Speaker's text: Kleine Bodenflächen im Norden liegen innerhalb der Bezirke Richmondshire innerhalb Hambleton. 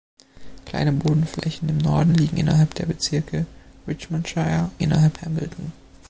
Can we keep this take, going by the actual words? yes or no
yes